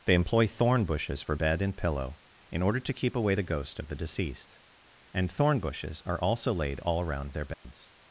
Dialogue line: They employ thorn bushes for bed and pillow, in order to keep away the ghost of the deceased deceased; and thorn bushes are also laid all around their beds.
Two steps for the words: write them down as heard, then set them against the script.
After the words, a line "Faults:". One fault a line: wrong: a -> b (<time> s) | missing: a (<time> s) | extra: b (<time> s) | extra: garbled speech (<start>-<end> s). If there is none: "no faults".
They employ thorn bushes for bed and pillow, in order to keep away the ghost of the deceased; and thorn bushes are also laid all around their beds.
Faults:
missing: deceased (4.6 s)